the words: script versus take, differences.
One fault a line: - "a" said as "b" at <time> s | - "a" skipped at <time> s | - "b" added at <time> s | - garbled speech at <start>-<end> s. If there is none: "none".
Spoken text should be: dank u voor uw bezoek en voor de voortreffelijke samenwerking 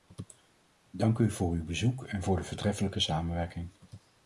none